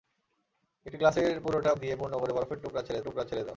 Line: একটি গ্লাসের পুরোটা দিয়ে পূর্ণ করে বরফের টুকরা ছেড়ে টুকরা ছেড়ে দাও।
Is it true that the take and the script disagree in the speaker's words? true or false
false